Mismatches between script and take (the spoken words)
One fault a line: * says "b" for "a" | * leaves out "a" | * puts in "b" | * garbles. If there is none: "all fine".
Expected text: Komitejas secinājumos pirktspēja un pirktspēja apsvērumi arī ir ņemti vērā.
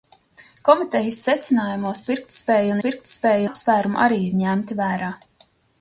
all fine